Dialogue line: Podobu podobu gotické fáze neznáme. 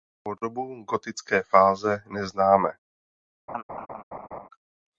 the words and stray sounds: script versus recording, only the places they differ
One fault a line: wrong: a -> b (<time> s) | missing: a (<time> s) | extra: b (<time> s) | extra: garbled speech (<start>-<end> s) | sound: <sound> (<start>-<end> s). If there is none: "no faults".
missing: podobu (0.8 s)
sound: laugh (3.5-4.5 s)